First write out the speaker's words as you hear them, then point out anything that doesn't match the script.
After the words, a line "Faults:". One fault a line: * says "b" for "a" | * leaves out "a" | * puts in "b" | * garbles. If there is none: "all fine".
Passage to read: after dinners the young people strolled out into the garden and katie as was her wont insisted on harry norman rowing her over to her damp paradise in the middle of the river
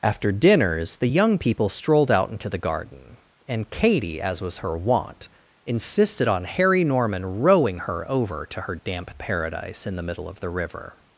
after dinners the young people strolled out into the garden and katie as was her wont insisted on harry norman rowing her over to her damp paradise in the middle of the river
Faults:
all fine